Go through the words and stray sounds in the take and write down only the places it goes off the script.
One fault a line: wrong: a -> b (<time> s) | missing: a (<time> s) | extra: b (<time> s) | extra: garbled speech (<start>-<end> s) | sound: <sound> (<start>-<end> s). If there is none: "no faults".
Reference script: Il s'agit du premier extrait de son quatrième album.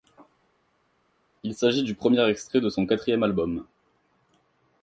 no faults